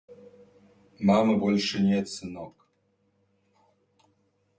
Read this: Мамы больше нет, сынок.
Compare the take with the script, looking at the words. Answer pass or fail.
pass